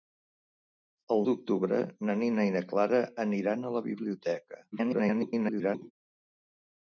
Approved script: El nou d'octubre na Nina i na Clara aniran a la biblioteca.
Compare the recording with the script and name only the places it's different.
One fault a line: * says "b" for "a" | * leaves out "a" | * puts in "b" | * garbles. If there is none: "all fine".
* leaves out "nou"
* garbles